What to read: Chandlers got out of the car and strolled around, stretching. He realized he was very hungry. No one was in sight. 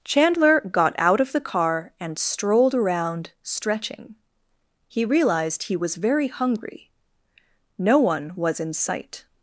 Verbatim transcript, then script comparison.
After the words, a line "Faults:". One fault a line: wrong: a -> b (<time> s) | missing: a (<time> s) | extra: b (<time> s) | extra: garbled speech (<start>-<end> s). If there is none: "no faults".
Chandler got out of the car and strolled around, stretching. He realized he was very hungry. No one was in sight.
Faults:
wrong: Chandlers -> Chandler (0.0 s)